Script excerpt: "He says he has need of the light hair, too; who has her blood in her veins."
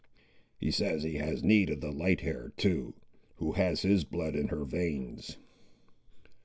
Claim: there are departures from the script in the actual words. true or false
true